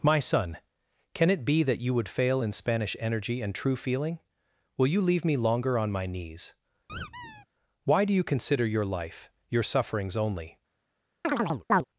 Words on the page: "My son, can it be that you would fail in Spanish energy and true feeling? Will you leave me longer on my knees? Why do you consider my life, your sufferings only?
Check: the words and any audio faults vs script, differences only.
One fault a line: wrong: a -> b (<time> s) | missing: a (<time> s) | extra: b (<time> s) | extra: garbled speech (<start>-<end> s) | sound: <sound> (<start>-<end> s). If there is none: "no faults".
sound: squeak (6.9-7.5 s)
wrong: my -> your (8.7 s)
sound: chirp (11.2-11.8 s)